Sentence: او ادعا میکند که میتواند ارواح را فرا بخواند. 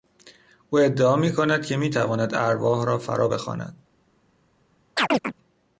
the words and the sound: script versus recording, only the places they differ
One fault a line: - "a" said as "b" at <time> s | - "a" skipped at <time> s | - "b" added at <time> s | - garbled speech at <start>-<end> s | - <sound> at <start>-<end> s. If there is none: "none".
- chirp at 5.0-5.3 s